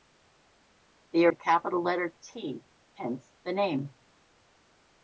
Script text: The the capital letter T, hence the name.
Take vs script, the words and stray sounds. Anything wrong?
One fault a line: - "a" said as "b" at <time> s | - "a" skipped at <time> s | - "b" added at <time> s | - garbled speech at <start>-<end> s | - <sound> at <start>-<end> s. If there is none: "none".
none